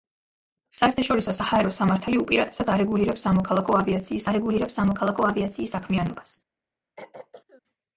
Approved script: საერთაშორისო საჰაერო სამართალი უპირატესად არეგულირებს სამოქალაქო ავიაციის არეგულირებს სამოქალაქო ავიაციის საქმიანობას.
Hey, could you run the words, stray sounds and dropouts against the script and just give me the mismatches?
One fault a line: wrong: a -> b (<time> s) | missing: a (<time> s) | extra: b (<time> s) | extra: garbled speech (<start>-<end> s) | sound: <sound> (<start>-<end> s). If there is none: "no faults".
sound: throat clearing (7.0-7.6 s)